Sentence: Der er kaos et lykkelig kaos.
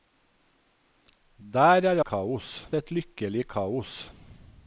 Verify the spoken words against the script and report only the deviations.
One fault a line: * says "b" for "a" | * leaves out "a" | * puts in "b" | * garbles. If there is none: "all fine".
all fine